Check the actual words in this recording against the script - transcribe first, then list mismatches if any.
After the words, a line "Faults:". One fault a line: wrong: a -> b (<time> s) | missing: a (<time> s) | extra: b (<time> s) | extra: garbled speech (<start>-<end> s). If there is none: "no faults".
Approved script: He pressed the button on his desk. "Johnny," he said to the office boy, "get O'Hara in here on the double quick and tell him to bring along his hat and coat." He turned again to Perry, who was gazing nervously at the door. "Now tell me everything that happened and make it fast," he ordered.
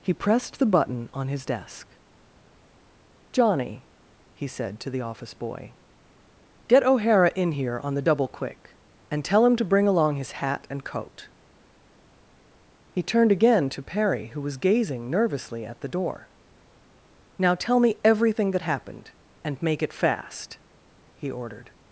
He pressed the button on his desk. "Johnny," he said to the office boy, "get O'Hara in here on the double quick and tell him to bring along his hat and coat." He turned again to Perry, who was gazing nervously at the door. "Now tell me everything that happened and make it fast," he ordered.
Faults:
no faults